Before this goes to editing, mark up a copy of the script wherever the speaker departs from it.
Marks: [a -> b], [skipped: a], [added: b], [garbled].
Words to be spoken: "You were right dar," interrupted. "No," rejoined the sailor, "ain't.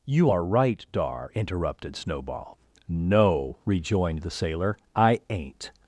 "You [were -> are] right dar," interrupted. [added: Snowball] "No," rejoined the sailor, [added: I] "ain't.